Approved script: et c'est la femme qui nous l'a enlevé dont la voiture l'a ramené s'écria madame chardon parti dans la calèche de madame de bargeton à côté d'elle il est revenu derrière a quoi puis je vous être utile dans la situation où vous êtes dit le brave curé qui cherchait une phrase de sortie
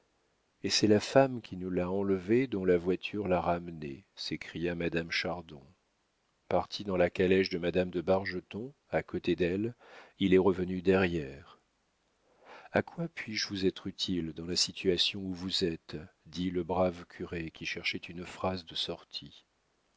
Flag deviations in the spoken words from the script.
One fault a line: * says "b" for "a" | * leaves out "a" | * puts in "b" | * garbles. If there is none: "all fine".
all fine